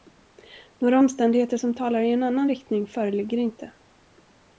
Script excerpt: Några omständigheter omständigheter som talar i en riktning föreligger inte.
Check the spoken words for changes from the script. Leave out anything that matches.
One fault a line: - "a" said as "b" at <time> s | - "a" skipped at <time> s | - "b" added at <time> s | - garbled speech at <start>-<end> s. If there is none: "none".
- "omständigheter" skipped at 1.6 s
- "annan" added at 2.2 s